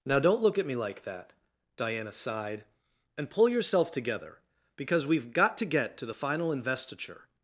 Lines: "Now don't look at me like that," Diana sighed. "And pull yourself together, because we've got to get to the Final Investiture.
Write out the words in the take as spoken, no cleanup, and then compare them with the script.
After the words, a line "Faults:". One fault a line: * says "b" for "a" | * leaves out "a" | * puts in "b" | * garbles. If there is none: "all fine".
"Now don't look at me like that," Diana sighed. "And pull yourself together, because we've got to get to the Final Investiture.
Faults:
all fine